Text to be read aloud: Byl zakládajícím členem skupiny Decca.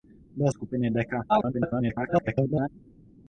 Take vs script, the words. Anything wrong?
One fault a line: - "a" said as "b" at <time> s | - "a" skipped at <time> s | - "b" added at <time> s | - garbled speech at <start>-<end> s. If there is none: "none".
- "zakládajícím členem" skipped at 0.5 s
- garbled speech at 1.3-2.7 s